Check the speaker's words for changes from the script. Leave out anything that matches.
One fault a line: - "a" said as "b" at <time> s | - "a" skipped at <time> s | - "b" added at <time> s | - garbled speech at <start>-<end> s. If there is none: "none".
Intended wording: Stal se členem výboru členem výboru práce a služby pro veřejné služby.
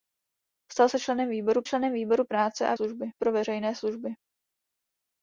none